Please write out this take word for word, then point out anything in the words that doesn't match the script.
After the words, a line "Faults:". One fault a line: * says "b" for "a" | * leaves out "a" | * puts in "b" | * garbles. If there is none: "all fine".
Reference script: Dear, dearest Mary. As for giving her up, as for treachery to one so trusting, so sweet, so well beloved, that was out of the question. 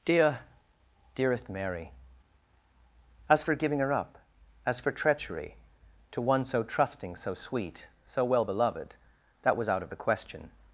Dear, dearest Mary. As for giving her up, as for treachery to one so trusting, so sweet, so well beloved, that was out of the question.
Faults:
all fine